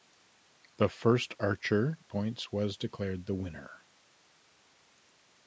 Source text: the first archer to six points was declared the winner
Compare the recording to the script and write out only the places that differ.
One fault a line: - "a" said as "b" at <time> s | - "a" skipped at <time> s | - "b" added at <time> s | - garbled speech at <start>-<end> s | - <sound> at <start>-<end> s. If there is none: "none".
- "to six" skipped at 2.0 s